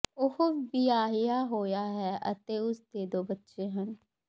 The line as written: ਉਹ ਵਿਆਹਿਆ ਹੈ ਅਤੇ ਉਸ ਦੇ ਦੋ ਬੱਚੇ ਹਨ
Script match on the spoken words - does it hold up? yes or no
no